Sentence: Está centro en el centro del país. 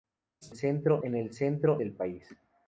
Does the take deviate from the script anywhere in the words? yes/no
no